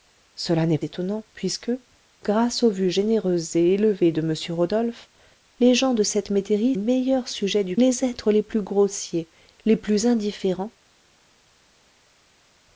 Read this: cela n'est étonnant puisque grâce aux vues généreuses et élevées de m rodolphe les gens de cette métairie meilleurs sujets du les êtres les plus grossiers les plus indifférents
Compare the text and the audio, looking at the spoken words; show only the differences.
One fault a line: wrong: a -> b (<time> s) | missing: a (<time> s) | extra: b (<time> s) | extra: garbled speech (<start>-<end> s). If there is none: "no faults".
no faults